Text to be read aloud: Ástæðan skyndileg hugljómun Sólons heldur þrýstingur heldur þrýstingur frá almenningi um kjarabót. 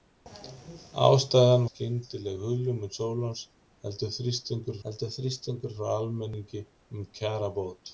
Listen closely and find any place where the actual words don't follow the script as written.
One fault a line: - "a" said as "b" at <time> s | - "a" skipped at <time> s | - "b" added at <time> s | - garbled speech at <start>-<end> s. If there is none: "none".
none